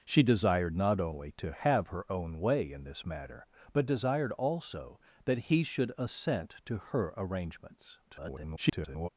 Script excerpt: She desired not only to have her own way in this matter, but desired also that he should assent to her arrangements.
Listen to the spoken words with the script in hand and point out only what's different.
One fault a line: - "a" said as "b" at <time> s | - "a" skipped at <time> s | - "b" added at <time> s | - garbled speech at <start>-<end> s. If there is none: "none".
- garbled speech at 8.1-9.1 s